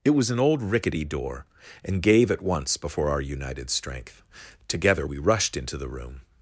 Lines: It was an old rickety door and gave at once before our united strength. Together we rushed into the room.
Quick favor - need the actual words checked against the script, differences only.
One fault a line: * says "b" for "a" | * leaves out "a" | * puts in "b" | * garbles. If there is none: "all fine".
all fine